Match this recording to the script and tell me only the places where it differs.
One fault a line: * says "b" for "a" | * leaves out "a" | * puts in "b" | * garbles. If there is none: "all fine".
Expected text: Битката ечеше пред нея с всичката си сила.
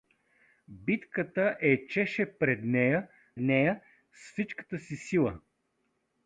* puts in "нея"